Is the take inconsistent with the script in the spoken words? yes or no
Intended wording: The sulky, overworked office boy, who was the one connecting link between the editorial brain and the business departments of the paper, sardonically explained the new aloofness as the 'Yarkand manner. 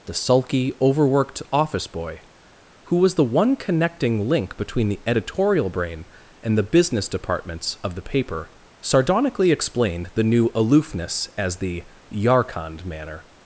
no